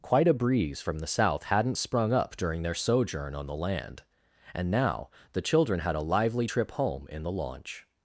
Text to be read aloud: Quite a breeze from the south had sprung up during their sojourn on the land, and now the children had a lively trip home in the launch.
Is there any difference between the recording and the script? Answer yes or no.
yes